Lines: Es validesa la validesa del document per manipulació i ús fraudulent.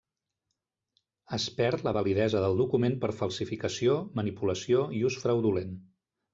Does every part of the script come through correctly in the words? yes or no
no